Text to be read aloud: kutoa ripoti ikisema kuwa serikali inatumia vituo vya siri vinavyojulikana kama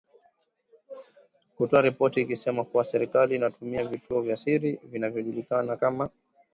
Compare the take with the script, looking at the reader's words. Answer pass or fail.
pass